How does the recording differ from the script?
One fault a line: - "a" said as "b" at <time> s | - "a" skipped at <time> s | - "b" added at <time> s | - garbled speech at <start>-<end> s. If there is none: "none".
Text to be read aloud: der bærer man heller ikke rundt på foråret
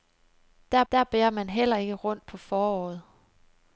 - "der" added at 0.9 s